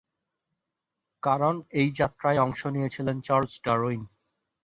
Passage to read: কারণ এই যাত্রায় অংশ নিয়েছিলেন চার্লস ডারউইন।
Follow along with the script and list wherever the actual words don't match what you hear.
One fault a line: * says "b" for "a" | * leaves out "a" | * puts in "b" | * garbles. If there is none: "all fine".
all fine